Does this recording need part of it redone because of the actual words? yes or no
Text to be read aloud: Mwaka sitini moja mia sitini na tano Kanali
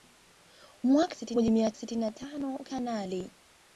no